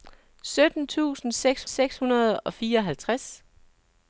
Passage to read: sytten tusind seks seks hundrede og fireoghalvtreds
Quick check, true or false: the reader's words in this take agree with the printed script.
true